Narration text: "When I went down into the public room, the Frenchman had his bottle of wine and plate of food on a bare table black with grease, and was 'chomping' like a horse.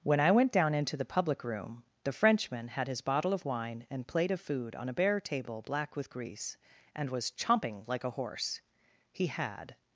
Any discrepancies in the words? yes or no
yes